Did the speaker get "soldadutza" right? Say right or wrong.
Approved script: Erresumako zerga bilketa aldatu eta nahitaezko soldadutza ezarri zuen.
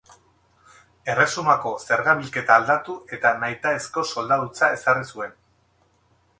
right